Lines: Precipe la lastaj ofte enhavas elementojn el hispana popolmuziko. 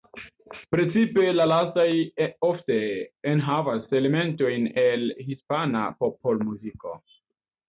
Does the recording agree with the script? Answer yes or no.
yes